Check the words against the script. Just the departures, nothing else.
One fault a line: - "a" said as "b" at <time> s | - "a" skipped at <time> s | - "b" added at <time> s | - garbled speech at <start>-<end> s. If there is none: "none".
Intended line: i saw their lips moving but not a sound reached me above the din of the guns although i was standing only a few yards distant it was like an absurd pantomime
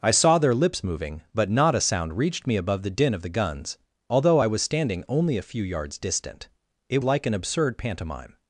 - "was" skipped at 7.0 s